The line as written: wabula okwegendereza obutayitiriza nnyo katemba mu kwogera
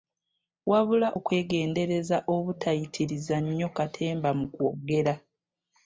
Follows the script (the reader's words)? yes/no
yes